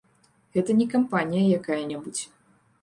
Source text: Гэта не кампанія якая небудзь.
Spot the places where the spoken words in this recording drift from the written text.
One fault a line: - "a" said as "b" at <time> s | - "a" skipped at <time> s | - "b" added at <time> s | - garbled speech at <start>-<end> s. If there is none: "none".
none